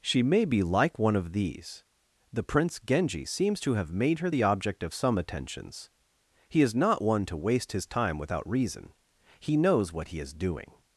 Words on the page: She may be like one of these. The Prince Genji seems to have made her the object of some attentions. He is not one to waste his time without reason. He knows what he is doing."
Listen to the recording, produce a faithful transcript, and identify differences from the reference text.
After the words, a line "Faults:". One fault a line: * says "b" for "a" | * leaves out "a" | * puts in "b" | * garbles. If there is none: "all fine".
She may be like one of these. The Prince Genji seems to have made her the object of some attentions. He is not one to waste his time without reason. He knows what he is doing."
Faults:
all fine